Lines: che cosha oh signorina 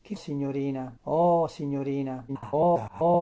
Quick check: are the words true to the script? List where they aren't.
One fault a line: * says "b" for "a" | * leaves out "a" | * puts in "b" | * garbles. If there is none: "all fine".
* says "signorina" for "cosha"
* garbles